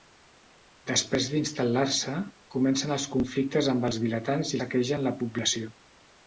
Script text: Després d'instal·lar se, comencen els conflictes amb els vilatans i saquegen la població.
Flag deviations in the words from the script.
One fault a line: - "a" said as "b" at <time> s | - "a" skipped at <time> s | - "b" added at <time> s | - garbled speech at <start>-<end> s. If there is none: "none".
none